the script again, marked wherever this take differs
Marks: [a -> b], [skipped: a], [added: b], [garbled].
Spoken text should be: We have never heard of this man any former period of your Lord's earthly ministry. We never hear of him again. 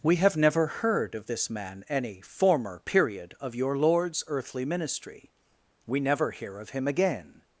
We have never heard of this man any former period of your Lord's earthly ministry. We never hear of him again.